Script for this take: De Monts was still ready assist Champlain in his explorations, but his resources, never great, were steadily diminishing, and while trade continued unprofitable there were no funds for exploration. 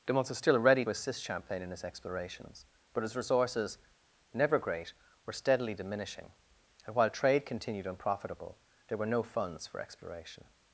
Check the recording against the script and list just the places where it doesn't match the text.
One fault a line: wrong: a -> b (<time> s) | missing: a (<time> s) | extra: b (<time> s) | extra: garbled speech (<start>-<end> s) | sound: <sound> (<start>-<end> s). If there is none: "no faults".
no faults